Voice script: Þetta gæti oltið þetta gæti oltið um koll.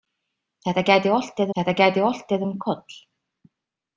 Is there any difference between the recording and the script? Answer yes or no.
no